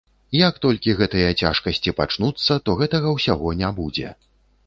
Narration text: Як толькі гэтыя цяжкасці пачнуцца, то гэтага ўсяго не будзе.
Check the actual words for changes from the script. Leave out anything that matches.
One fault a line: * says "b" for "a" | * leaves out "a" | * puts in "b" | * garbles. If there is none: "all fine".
all fine